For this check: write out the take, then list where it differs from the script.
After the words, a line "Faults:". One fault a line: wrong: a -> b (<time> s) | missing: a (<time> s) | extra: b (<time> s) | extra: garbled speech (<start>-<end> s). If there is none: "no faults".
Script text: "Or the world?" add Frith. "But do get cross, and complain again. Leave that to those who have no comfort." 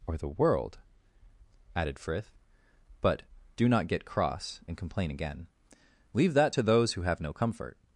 "Or the world?" added Frith. "But do not get cross, and complain again. Leave that to those who have no comfort."
Faults:
wrong: add -> added (1.8 s)
extra: not (3.7 s)